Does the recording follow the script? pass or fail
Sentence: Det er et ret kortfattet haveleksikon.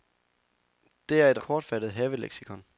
fail